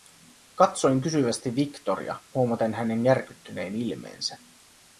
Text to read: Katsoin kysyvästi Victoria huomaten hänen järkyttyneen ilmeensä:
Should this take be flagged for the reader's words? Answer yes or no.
no